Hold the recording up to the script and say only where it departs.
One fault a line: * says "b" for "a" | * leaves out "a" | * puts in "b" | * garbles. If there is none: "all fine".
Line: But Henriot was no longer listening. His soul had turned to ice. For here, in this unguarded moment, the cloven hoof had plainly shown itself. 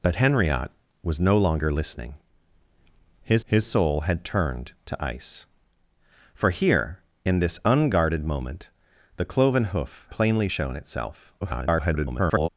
* puts in "his"
* leaves out "had"
* garbles